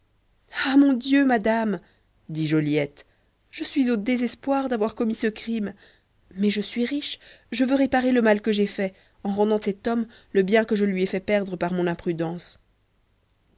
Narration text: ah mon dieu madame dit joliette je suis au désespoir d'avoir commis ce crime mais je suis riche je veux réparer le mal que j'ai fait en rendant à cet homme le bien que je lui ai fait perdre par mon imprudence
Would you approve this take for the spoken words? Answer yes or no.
no